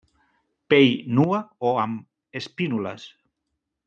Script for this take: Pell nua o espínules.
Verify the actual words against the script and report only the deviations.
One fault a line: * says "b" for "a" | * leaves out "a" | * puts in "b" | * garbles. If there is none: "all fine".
* puts in "amb"